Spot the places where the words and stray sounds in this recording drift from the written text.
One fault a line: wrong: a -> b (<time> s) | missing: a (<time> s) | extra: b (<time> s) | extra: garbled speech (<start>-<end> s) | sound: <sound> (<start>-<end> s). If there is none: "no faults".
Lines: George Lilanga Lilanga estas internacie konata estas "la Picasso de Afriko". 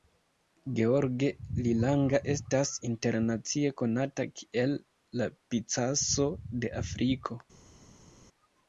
missing: Lilanga (2.2 s)
wrong: estas -> kiel (4.4 s)